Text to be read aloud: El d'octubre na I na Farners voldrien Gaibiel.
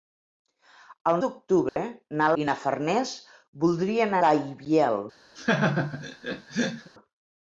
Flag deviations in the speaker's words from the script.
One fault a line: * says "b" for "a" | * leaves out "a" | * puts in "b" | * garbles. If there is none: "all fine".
all fine